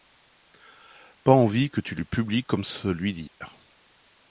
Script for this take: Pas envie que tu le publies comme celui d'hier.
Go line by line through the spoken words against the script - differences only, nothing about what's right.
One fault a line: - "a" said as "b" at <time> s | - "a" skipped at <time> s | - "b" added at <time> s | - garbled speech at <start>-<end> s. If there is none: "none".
none